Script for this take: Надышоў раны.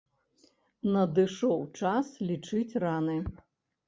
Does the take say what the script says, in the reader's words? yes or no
no